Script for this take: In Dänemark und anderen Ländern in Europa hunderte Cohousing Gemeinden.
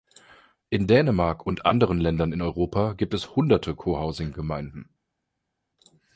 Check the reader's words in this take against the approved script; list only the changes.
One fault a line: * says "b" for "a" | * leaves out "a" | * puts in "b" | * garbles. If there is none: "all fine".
* puts in "gibt es"